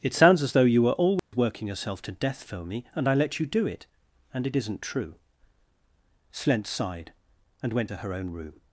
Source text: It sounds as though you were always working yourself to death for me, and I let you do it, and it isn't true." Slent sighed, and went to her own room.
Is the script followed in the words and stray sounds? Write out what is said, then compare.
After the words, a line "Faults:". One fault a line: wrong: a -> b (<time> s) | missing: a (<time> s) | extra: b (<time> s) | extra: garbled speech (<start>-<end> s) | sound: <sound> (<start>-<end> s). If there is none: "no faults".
It sounds as though you were always working yourself to death for me, and I let you do it, and it isn't true." Slent sighed, and went to her own room.
Faults:
sound: dropout (1.2-1.3 s)